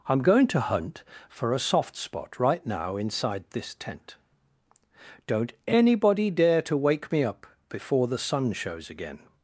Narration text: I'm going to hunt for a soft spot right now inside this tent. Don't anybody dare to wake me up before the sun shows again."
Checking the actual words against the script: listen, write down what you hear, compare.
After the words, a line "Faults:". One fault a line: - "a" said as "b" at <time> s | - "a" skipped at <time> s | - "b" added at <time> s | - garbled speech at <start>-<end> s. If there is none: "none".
I'm going to hunt for a soft spot right now inside this tent. Don't anybody dare to wake me up before the sun shows again."
Faults:
none